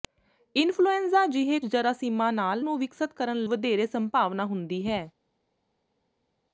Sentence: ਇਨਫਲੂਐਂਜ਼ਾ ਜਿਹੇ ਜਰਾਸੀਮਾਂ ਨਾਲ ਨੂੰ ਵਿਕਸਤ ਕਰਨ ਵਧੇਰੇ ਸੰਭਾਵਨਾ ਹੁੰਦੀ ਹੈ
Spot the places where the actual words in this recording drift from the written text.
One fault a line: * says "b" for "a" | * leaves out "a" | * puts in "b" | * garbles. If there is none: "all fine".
all fine